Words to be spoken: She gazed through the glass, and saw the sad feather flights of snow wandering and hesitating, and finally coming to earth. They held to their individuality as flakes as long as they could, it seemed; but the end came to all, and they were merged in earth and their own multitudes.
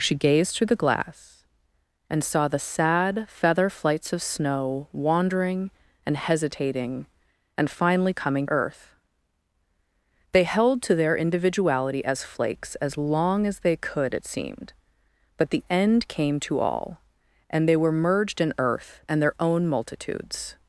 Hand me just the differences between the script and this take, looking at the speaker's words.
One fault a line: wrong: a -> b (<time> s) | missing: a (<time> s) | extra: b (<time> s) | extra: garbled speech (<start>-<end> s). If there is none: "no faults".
missing: to (8.5 s)